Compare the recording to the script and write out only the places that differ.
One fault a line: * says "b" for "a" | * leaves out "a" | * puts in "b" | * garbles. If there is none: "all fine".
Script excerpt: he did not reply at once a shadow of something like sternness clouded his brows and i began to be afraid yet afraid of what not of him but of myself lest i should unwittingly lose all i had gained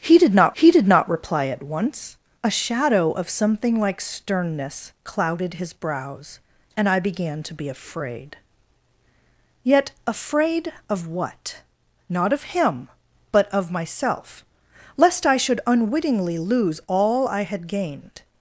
* puts in "he did not"